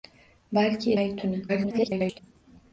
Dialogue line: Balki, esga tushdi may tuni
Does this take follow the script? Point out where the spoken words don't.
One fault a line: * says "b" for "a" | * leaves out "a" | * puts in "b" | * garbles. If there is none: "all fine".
* leaves out "esga tushdi"
* garbles